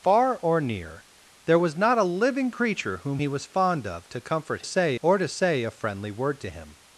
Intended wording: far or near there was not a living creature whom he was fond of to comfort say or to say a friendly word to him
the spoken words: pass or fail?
pass